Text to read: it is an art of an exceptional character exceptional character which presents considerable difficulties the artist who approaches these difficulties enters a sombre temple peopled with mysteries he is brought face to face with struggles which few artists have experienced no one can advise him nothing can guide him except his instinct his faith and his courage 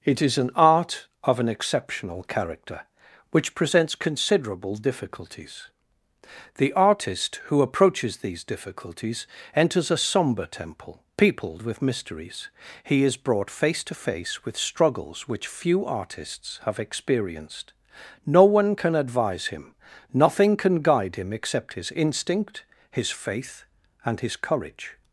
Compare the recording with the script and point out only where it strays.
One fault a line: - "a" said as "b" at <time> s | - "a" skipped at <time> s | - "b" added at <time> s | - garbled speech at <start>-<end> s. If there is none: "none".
- "exceptional character" skipped at 2.9 s